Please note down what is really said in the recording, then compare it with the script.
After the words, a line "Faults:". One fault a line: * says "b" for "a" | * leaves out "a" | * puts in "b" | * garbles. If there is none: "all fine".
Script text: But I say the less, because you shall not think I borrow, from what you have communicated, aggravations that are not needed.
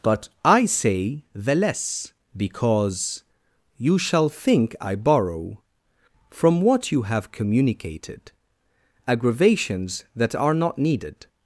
But I say the less, because you shall think I borrow, from what you have communicated, aggravations that are not needed.
Faults:
* leaves out "not"